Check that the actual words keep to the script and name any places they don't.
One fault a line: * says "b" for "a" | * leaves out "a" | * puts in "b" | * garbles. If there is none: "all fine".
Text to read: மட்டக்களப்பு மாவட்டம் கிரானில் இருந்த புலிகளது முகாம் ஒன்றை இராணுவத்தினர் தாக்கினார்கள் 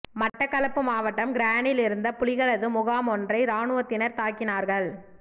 all fine